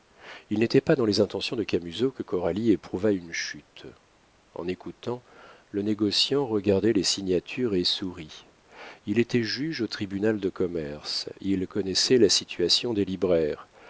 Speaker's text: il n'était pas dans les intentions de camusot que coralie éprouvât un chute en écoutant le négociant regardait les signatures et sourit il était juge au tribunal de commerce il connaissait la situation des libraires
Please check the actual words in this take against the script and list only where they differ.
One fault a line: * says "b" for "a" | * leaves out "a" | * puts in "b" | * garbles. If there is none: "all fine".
* says "une" for "un"